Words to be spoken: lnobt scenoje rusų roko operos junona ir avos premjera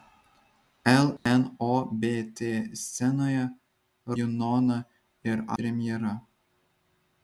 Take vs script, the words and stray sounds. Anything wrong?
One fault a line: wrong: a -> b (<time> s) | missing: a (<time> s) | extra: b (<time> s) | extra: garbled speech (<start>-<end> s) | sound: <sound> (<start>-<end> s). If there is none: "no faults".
sound: dropout (1.2-1.3 s)
missing: rusų roko operos (3.4 s)
missing: avos (5.4 s)